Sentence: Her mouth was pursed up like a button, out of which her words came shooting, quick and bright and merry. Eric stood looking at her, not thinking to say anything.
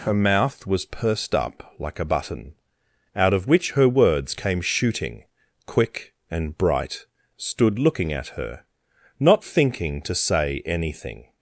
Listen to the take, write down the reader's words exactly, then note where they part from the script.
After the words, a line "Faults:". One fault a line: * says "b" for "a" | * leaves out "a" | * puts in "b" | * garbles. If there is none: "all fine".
Her mouth was pursed up like a button, out of which her words came shooting, quick and bright stood looking at her, not thinking to say anything.
Faults:
* leaves out "and merry Eric"